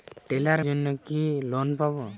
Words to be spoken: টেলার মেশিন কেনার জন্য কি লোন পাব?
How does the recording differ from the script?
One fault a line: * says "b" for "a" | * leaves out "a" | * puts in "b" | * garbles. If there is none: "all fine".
* leaves out "মেশিন কেনার"